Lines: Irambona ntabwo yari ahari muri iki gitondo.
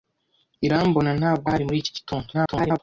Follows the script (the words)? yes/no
no